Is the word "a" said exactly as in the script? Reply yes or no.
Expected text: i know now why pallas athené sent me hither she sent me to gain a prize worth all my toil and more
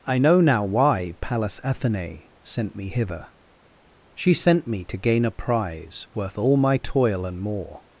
yes